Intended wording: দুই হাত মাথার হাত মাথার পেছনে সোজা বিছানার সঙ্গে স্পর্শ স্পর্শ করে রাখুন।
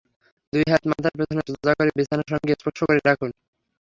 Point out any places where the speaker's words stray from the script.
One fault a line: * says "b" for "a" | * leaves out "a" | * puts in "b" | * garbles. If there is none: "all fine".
* leaves out "হাত মাথার"
* puts in "করে"
* leaves out "স্পর্শ"